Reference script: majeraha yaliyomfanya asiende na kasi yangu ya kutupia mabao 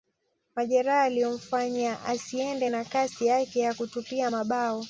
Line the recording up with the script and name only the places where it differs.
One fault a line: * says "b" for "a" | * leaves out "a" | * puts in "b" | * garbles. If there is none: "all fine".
* says "yake" for "yangu"